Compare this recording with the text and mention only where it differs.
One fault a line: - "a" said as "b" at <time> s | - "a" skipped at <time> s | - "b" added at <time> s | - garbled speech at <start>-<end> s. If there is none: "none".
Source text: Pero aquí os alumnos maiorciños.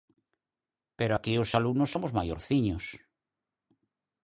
- "somos" added at 1.9 s